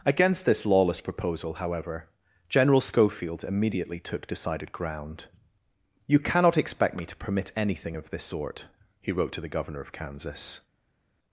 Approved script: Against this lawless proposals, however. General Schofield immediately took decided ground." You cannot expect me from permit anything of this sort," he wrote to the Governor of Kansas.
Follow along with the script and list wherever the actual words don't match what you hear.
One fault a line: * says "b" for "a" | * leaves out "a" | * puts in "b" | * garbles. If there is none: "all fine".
* says "proposal" for "proposals"
* says "to" for "from"